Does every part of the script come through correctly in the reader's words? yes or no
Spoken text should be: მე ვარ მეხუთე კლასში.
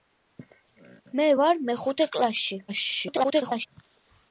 no